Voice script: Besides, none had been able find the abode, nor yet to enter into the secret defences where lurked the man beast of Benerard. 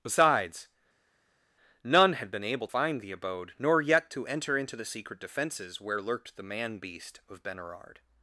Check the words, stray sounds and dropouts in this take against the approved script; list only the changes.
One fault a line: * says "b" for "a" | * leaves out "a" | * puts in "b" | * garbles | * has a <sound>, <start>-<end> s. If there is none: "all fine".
all fine